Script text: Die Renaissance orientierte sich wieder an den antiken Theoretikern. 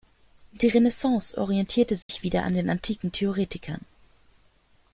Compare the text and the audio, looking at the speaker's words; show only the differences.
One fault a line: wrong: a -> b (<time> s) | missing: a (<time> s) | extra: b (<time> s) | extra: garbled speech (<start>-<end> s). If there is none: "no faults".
no faults